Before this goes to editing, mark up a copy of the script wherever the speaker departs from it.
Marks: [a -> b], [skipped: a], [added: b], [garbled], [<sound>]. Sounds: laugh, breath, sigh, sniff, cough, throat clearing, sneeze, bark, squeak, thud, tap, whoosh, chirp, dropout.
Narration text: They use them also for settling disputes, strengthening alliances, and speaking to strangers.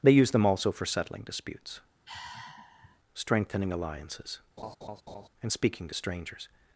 They use them also for settling disputes, [sigh] strengthening alliances, [laugh] and speaking to strangers.